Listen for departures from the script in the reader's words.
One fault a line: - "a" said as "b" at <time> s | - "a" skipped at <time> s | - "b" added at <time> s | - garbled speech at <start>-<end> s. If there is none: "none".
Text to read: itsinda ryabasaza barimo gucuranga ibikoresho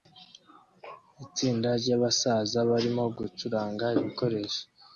none